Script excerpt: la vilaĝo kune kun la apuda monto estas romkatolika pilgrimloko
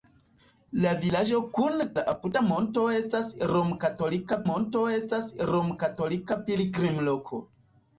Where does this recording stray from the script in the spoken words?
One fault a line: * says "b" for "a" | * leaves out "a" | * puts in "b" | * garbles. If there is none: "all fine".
* leaves out "kun"
* puts in "monto estas romkatolika"